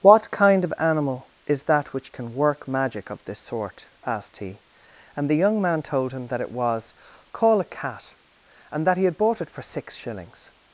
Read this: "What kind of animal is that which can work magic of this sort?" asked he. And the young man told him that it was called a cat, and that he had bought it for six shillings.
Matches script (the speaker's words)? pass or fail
fail